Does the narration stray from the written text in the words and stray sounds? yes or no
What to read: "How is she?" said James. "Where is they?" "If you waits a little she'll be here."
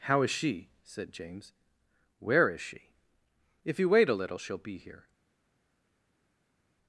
yes